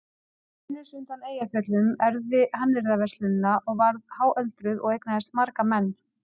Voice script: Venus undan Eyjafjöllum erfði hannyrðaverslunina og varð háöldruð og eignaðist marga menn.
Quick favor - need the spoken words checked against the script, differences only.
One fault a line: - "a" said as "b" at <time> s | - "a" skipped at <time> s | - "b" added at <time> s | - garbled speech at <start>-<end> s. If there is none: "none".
none